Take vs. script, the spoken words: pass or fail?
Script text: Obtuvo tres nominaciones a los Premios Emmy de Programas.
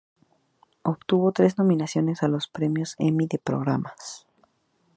pass